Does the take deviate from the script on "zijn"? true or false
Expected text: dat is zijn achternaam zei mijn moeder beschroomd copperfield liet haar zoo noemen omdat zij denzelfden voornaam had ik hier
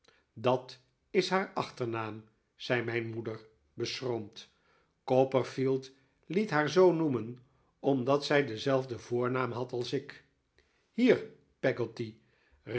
true